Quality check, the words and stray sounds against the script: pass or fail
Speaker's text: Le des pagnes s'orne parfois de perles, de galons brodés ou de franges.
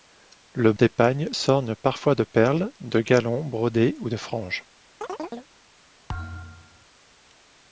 fail